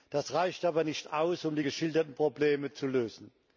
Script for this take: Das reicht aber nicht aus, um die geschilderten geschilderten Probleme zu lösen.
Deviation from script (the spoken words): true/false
true